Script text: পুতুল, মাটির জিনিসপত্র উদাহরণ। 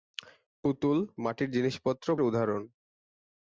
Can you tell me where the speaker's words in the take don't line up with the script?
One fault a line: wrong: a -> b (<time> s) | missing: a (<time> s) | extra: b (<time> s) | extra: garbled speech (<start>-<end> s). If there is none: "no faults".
no faults